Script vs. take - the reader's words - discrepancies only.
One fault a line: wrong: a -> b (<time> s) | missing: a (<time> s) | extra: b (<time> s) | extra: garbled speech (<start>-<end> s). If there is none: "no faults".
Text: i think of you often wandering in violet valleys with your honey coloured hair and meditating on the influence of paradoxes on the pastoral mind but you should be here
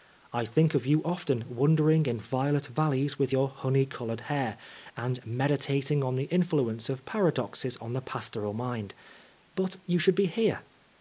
no faults